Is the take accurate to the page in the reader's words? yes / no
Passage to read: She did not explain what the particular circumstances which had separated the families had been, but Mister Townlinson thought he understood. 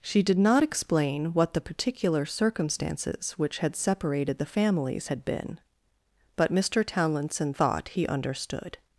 yes